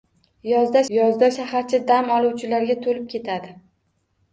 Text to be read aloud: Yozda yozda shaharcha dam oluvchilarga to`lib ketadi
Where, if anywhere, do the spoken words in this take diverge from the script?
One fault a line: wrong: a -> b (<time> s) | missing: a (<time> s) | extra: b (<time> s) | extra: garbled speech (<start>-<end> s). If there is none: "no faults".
no faults